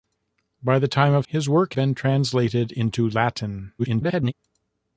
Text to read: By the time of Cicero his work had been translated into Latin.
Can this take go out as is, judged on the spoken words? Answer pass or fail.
fail